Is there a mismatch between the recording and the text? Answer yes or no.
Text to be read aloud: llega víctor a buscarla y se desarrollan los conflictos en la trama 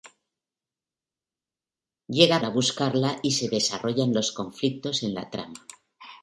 yes